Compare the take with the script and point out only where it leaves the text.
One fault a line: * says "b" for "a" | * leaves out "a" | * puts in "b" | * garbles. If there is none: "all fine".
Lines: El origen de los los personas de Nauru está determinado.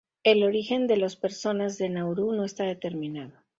* leaves out "los"
* puts in "no"